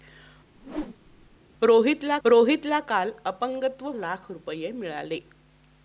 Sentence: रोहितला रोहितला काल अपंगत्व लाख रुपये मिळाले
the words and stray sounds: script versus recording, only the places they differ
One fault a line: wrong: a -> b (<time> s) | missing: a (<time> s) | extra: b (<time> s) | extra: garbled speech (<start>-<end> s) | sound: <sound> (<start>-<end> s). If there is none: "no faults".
sound: whoosh (0.6-1.4 s)